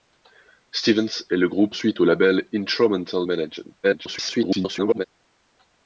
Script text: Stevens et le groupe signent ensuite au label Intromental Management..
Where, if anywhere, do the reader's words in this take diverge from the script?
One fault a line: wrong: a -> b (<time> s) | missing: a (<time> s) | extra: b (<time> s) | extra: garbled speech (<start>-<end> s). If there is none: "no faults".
missing: signent (1.8 s)
extra: garbled speech (3.8-5.1 s)